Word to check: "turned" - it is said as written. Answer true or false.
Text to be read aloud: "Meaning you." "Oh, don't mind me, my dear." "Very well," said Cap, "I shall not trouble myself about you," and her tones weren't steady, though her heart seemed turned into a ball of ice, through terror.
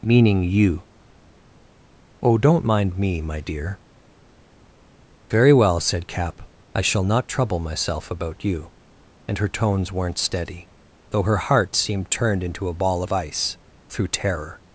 true